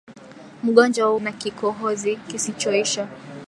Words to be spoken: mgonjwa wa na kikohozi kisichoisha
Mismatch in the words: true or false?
false